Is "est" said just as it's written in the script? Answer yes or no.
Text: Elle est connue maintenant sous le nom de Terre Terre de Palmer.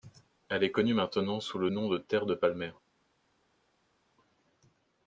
yes